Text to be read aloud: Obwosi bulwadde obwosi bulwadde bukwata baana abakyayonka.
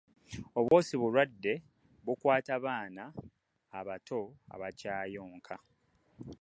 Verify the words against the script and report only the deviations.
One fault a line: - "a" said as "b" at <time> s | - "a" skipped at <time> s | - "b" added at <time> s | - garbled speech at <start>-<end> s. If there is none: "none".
- "obwosi bulwadde" skipped at 1.5 s
- "abato" added at 3.8 s